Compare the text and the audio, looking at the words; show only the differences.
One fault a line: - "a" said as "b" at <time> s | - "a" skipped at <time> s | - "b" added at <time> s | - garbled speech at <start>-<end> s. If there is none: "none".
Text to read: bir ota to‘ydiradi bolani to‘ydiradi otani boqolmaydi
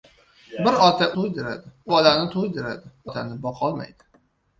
none